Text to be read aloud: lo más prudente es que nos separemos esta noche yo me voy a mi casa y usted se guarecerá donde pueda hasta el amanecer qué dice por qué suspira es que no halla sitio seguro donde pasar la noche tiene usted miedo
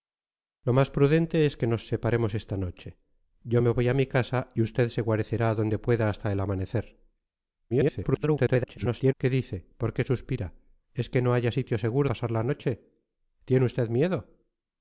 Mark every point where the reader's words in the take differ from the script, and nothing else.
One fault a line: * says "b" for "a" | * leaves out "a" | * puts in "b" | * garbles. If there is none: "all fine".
* garbles
* leaves out "donde"